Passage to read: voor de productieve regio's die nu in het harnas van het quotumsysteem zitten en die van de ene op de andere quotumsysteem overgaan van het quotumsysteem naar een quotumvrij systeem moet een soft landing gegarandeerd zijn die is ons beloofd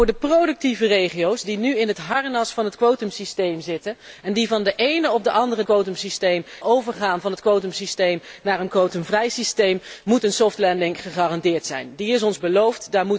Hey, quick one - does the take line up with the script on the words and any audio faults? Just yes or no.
yes